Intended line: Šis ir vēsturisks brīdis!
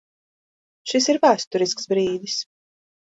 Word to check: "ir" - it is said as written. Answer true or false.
true